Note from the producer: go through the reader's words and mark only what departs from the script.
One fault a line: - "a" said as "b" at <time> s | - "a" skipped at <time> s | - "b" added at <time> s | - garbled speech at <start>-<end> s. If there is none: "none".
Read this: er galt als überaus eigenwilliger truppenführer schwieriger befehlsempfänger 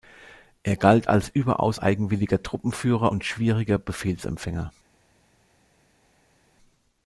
- "und" added at 3.1 s